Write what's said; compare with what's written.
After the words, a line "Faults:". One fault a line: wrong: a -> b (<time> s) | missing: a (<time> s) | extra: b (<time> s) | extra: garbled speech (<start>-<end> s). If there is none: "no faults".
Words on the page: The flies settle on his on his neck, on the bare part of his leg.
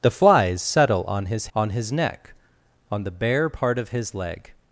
The flies settle on his on his neck, on the bare part of his leg.
Faults:
no faults